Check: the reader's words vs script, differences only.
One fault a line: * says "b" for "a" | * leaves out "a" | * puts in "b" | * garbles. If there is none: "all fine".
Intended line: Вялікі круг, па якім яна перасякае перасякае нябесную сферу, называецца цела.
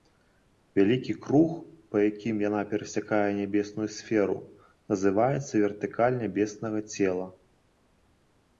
* leaves out "перасякае"
* puts in "вертыкаль нябеснага"